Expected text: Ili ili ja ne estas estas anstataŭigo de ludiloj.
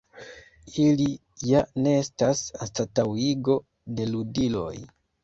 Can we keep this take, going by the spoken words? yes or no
no